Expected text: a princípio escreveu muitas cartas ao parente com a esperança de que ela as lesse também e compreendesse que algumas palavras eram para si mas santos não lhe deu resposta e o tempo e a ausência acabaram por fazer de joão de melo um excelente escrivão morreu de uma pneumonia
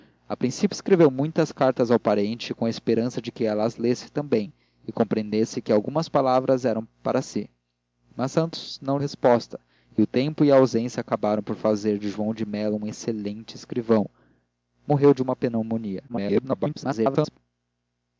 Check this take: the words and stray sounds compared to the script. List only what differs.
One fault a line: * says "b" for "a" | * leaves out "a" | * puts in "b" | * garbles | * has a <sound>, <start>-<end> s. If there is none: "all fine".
* leaves out "lhe deu"
* garbles